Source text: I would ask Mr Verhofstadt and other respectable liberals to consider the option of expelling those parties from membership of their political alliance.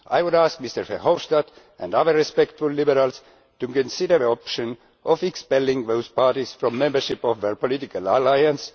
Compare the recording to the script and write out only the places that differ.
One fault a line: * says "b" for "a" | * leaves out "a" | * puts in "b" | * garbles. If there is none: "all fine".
all fine